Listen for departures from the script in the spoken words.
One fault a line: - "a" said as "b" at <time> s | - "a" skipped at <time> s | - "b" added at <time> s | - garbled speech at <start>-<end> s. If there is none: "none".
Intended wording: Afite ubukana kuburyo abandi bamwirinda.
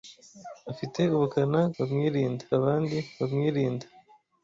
- "kuburyo" said as "bamwirinda" at 1.8 s